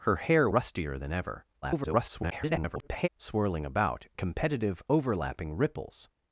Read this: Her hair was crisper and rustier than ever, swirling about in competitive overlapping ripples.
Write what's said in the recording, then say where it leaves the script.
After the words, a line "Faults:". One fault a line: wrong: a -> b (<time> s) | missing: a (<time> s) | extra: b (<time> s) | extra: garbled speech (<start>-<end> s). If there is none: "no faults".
Her hair rustier than ever, [garbled] swirling about competitive overlapping ripples.
Faults:
missing: was crisper and (0.5 s)
extra: garbled speech (1.6-3.1 s)
missing: in (4.1 s)